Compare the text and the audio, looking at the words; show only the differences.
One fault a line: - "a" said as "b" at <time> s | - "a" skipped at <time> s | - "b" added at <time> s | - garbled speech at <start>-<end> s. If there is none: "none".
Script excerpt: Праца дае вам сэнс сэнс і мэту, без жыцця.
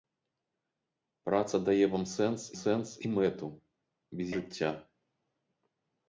none